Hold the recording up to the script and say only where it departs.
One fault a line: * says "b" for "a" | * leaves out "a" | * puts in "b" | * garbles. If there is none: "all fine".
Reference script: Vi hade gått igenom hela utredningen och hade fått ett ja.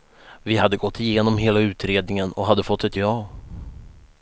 all fine